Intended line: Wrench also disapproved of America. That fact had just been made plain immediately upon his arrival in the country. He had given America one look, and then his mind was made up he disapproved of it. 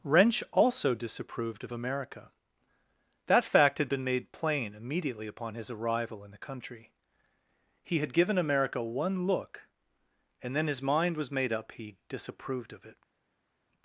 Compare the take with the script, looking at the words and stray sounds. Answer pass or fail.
fail